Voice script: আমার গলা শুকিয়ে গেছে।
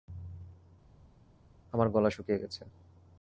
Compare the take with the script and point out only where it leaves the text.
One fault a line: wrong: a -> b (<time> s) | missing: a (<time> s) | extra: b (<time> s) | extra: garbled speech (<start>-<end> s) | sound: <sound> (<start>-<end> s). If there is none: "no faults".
no faults